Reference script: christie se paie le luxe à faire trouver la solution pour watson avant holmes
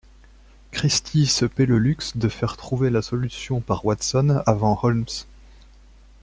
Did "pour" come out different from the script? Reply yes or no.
yes